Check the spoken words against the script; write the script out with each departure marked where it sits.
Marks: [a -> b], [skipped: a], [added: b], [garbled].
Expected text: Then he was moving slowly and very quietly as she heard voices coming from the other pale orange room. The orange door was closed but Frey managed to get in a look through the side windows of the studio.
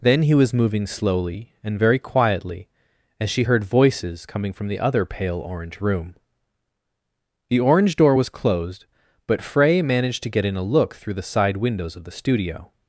Then he was moving slowly and very quietly as she heard voices coming from the other pale orange room. The orange door was closed but Frey managed to get in a look through the side windows of the studio.